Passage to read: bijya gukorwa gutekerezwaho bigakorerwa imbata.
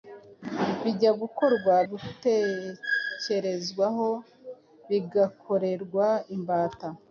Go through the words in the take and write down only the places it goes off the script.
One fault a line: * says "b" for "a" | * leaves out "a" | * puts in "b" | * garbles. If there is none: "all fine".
all fine